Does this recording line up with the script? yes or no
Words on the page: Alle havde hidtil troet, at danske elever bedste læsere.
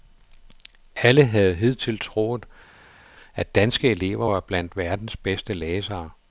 no